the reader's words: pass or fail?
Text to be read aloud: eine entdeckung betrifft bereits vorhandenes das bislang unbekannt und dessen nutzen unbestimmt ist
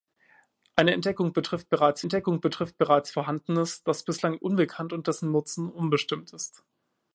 fail